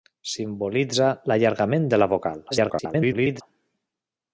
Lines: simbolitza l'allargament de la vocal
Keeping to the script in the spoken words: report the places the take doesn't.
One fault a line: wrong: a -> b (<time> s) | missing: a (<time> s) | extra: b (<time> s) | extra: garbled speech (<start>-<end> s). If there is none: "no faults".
extra: garbled speech (2.5-3.4 s)